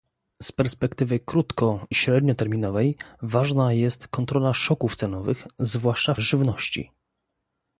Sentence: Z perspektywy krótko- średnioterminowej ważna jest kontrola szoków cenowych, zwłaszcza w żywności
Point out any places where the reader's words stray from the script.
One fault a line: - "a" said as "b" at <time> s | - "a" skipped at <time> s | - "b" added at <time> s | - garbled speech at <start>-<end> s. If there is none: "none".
none